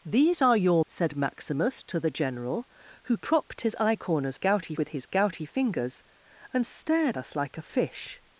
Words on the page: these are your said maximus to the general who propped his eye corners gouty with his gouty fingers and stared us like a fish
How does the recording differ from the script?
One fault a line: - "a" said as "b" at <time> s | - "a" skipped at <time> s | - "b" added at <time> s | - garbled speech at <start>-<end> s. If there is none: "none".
none